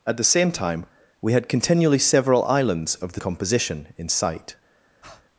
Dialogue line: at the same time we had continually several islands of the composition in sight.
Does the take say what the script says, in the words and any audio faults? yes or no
no